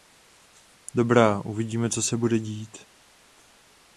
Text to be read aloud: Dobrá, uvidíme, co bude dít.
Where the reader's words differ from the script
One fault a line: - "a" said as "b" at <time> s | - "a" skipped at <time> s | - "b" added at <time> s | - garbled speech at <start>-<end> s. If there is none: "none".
- "se" added at 2.0 s